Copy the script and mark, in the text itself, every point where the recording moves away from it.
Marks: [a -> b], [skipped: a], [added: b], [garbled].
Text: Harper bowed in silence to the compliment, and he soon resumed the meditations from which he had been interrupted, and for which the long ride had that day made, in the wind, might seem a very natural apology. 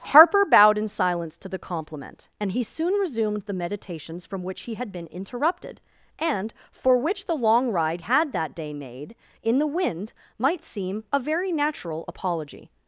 Harper bowed in silence to the compliment, and he soon resumed the meditations from which he had been interrupted, and for which the long ride had that day made, in the wind, might seem a very natural apology.